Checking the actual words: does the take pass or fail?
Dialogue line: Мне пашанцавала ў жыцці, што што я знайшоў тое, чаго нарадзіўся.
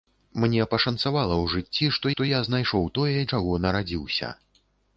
pass